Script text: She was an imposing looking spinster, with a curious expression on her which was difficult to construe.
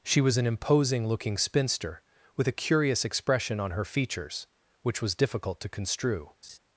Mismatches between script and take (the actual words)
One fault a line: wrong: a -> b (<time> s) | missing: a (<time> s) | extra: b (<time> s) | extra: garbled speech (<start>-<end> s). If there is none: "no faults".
extra: features (3.9 s)